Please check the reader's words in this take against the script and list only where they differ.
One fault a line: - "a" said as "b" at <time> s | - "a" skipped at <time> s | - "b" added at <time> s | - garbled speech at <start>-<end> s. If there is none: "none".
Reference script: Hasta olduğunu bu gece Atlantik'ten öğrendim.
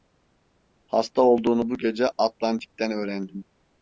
none